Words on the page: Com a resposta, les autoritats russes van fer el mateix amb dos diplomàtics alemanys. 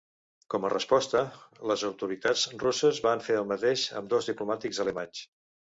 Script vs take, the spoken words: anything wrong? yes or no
no